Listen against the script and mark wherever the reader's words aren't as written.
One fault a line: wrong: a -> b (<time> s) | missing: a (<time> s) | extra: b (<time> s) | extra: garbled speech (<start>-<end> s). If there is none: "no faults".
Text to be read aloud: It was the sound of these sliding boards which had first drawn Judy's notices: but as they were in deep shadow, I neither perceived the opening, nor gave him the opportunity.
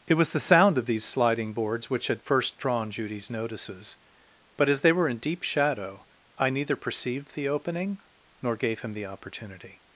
no faults